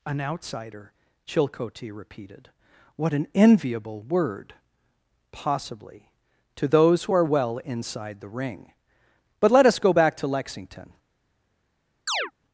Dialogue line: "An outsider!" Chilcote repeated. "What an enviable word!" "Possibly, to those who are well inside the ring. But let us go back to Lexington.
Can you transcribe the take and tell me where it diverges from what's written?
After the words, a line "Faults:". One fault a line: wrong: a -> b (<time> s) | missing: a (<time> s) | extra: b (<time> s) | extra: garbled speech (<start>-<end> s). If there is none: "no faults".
"An outsider!" Chilcote repeated. "What an enviable word!" "Possibly, to those who are well inside the ring. But let us go back to Lexington.
Faults:
no faults